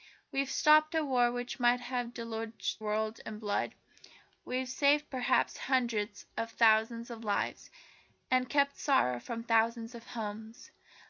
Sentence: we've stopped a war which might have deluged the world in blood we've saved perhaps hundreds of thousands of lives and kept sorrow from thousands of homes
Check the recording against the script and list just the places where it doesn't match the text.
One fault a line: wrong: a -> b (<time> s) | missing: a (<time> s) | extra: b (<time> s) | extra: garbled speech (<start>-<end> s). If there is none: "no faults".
missing: the (2.8 s)